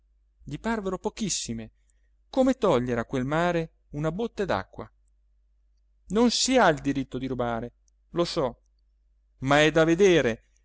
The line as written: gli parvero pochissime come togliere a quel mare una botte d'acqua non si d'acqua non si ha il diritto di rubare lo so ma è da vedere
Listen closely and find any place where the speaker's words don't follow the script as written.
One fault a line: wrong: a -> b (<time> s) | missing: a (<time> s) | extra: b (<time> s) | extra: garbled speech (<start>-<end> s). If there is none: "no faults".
missing: d'acqua non si (6.6 s)